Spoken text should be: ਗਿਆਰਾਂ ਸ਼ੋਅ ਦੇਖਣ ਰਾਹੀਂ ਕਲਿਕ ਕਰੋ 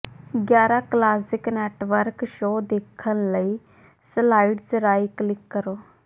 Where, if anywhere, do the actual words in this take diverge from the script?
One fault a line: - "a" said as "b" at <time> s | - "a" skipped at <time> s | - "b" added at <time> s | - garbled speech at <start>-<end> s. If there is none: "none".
- "ਕਲਾਸਿਕ ਨੈਟਵਰਕ" added at 0.8 s
- "ਲਈ ਸਲਾਈਡਜ਼" added at 3.3 s